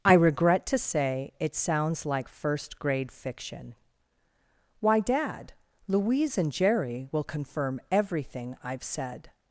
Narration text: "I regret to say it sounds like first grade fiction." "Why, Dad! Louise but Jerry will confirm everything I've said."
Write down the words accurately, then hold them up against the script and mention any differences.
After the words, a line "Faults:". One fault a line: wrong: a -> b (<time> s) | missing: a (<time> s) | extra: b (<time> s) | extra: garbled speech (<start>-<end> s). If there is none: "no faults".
"I regret to say it sounds like first grade fiction." "Why, Dad! Louise and Jerry will confirm everything I've said."
Faults:
wrong: but -> and (6.4 s)